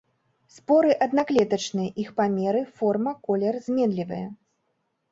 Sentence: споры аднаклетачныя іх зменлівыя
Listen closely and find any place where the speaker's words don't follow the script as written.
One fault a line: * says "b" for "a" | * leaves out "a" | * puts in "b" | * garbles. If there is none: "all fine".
* puts in "памеры форма колер"